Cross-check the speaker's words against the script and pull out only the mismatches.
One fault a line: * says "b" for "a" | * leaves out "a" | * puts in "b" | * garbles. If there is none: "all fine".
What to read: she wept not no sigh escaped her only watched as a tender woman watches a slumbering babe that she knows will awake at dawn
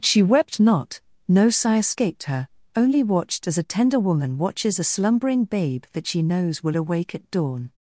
all fine